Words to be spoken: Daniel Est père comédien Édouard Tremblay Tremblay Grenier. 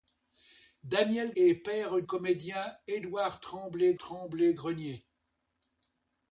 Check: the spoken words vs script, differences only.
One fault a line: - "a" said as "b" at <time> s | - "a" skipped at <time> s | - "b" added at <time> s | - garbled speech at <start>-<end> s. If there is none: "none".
none